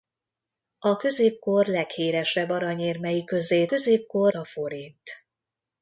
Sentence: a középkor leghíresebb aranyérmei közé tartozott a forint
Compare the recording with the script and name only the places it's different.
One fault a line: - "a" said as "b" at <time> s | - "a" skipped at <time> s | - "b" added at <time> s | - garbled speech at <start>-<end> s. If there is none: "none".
- "tartozott" said as "középkor" at 3.6 s